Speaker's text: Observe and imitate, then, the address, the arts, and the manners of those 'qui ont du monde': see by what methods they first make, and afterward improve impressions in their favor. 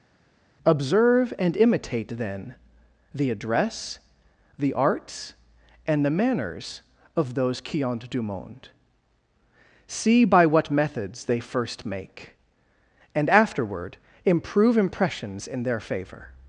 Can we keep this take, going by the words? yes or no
yes